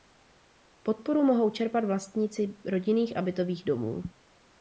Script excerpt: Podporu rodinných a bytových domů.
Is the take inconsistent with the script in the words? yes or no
yes